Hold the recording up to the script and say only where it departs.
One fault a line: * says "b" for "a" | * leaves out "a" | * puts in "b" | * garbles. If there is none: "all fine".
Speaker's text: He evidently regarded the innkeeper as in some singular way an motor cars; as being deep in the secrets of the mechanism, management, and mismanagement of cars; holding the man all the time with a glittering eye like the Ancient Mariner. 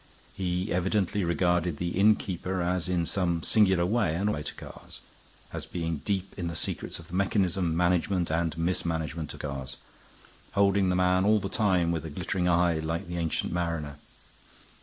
all fine